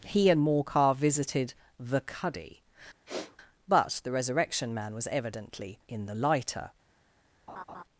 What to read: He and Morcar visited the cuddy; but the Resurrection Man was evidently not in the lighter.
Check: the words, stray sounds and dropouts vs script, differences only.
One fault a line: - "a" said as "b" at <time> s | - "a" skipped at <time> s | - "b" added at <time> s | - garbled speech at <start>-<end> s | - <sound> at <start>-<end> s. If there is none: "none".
- sniff at 3.1-3.4 s
- "not" skipped at 5.8 s
- laugh at 7.5-7.8 s